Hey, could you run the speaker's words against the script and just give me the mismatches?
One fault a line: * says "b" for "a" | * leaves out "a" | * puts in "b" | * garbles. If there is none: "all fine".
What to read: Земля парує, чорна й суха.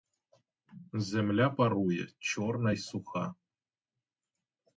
all fine